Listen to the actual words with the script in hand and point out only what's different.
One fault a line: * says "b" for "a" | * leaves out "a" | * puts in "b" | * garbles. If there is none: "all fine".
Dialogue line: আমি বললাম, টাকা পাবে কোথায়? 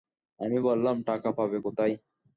all fine